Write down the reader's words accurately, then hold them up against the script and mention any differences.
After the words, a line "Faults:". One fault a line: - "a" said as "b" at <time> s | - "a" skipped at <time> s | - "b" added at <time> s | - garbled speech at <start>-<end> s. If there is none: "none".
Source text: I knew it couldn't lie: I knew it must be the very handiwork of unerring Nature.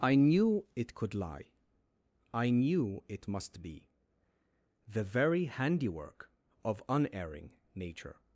I knew it could lie: I knew it must be the very handiwork of unerring Nature.
Faults:
- "couldn't" said as "could" at 0.9 s